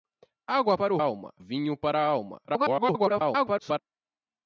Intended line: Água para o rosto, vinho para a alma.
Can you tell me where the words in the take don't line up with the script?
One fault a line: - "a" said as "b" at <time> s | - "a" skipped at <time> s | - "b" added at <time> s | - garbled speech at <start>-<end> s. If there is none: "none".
- "rosto" said as "alma" at 1.0 s
- garbled speech at 2.5-3.8 s